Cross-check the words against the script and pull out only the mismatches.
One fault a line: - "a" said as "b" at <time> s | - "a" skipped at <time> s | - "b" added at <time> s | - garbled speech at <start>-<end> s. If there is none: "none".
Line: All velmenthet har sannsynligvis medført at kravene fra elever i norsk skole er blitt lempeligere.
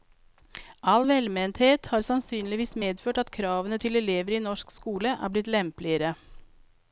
- "fra" said as "til" at 3.8 s